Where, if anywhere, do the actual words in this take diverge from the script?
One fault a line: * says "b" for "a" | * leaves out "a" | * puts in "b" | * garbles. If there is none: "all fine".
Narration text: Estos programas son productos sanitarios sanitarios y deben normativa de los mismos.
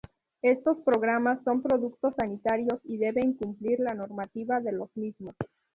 * leaves out "sanitarios"
* puts in "cumplir la"